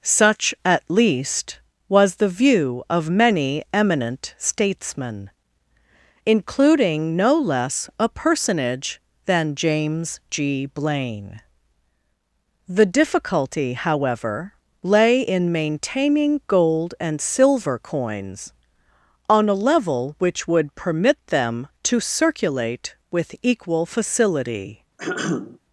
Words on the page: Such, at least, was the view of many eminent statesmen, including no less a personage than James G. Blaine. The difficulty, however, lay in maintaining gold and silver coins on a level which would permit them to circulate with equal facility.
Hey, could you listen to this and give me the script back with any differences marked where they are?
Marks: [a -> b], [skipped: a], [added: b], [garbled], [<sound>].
Such, at least, was the view of many eminent statesmen, including no less a personage than James G. Blaine. The difficulty, however, lay in maintaining gold and silver coins on a level which would permit them to circulate with equal facility. [throat clearing]